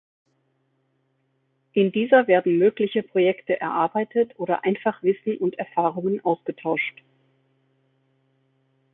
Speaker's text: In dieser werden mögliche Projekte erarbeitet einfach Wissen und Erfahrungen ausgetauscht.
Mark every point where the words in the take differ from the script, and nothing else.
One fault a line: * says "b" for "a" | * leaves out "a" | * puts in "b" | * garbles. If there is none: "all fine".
* puts in "oder"